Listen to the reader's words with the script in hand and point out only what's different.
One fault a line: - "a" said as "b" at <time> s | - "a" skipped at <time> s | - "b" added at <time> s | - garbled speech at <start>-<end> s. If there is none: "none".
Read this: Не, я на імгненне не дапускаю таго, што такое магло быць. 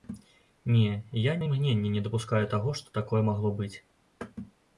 none